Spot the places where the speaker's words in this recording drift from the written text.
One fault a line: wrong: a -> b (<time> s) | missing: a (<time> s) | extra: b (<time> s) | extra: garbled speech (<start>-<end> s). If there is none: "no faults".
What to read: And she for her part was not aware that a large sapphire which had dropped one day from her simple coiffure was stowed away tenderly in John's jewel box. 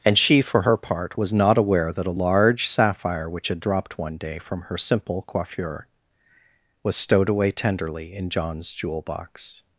no faults